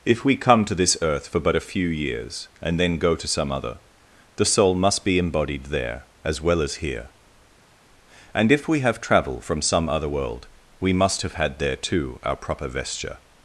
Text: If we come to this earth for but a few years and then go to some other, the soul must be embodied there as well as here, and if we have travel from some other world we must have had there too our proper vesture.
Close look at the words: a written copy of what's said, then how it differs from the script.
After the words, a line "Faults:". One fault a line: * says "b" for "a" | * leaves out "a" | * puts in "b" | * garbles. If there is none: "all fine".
If we come to this earth for but a few years and then go to some other, the soul must be embodied there as well as here, and if we have travel from some other world we must have had there too our proper vesture.
Faults:
all fine